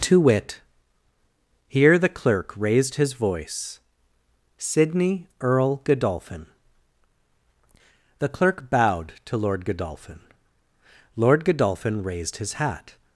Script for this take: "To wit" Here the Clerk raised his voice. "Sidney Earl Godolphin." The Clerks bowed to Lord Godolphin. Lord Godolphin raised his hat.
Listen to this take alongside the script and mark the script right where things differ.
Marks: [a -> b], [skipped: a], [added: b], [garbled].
"To wit" Here the Clerk raised his voice. "Sidney Earl Godolphin." The [Clerks -> Clerk] bowed to Lord Godolphin. Lord Godolphin raised his hat.